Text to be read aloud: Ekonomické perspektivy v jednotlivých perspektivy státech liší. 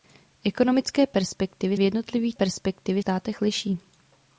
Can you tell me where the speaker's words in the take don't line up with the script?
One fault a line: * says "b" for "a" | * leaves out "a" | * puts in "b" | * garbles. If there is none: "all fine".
all fine